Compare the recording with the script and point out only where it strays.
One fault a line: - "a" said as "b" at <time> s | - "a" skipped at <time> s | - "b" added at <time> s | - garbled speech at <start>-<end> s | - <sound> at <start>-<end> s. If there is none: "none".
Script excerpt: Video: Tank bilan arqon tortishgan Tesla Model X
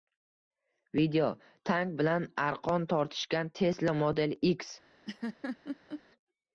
- laugh at 5.1-6.0 s